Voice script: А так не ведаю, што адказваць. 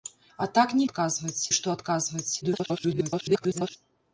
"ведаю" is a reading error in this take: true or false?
true